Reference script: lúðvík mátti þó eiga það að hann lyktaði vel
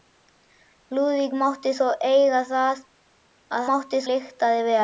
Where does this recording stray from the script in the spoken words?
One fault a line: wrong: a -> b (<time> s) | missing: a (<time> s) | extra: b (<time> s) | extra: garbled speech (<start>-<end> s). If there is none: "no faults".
wrong: hann -> mátti (3.7 s)